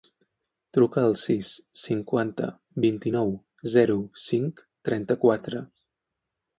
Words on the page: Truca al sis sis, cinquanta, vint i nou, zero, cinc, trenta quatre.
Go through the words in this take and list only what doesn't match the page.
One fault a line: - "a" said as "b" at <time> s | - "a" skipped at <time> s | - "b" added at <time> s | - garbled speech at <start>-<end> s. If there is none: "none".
- "sis" skipped at 1.5 s